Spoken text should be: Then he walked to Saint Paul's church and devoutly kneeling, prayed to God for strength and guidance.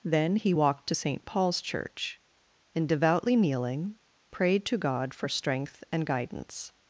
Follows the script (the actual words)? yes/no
yes